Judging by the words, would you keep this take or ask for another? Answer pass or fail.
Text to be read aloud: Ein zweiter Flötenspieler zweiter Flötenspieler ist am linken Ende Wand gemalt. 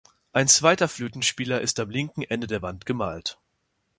fail